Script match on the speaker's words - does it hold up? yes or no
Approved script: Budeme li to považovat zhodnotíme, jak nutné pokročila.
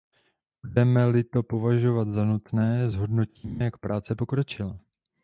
no